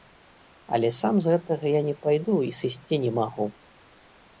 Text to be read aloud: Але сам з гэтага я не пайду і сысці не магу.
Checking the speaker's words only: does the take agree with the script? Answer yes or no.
yes